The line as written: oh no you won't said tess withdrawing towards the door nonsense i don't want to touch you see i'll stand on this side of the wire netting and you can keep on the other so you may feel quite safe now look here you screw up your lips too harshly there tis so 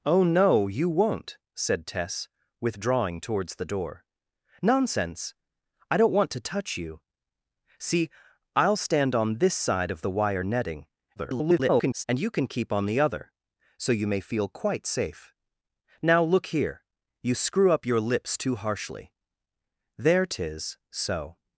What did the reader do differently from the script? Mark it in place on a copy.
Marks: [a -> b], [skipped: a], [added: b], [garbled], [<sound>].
oh no you won't said tess withdrawing towards the door nonsense i don't want to touch you see i'll stand on this side of the wire netting [garbled] and you can keep on the other so you may feel quite safe now look here you screw up your lips too harshly there tis so